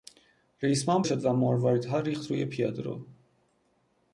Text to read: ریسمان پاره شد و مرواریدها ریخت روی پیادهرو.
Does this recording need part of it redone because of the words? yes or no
yes